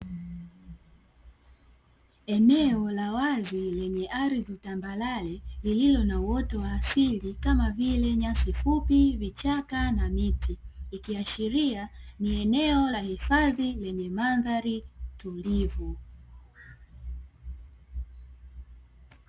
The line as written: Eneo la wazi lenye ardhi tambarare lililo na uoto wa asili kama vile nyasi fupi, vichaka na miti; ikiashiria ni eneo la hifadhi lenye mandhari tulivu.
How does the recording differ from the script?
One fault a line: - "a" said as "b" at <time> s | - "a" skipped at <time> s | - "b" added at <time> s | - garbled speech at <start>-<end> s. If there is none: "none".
none